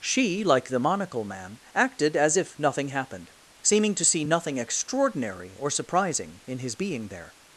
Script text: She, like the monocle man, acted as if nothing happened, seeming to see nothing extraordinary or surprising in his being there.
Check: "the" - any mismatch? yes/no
no